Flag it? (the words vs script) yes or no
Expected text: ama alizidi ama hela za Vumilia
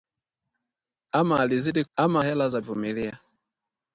no